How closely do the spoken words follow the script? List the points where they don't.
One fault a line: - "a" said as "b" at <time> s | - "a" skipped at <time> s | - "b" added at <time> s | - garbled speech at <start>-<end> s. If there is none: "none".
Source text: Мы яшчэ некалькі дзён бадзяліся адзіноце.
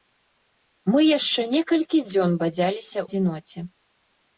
none